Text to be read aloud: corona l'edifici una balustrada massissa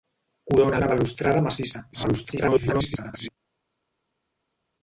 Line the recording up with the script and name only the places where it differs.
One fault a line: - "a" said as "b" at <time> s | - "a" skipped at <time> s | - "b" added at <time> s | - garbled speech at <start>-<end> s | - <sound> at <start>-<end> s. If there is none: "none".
- "l'edifici" skipped at 0.8 s
- garbled speech at 1.9-3.3 s